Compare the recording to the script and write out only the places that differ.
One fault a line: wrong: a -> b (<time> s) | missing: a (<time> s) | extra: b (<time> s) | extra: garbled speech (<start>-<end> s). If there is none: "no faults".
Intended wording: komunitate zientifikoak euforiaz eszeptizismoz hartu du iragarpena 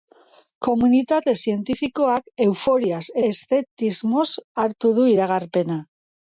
no faults